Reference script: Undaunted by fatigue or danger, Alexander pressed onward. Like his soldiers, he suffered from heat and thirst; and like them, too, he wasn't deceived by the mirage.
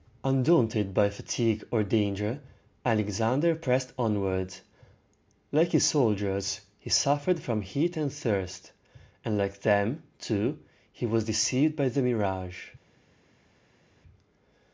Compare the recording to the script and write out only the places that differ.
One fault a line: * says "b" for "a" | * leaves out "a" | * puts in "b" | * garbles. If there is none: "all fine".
* says "was" for "wasn't"